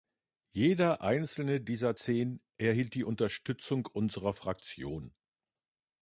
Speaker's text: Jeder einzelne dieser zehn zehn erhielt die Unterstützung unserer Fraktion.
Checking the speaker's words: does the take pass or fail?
fail